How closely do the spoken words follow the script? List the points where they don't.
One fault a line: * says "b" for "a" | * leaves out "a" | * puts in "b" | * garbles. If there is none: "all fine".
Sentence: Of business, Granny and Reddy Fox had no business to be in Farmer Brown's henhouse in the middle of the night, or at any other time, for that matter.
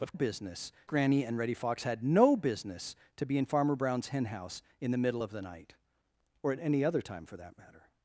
all fine